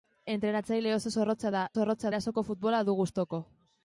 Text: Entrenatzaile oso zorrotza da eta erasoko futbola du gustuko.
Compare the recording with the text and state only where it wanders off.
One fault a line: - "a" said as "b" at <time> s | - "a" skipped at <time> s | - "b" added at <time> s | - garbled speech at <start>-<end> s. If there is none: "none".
- "eta" said as "zorrotza" at 1.7 s